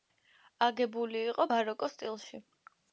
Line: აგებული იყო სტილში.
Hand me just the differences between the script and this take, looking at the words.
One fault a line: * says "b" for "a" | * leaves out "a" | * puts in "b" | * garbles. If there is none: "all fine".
* puts in "ბაროკოს"